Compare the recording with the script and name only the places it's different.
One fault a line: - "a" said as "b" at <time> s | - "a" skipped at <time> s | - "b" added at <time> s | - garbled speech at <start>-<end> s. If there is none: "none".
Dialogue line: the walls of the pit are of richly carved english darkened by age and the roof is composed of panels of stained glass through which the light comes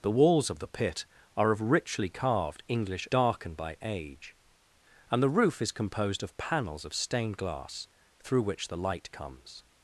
none